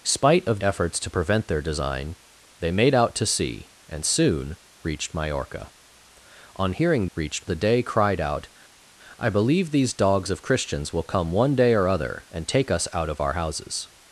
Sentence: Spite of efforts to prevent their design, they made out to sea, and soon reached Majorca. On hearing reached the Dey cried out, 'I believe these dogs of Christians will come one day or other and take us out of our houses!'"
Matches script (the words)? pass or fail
pass